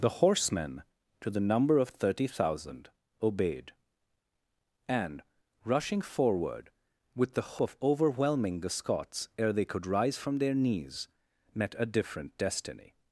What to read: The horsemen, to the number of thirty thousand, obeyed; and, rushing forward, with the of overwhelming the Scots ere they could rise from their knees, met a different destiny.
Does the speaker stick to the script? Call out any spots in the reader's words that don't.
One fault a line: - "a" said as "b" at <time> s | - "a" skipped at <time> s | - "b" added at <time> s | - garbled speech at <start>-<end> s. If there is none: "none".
none